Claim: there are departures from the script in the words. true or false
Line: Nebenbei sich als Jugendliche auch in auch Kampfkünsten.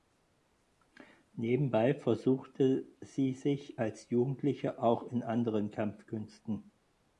true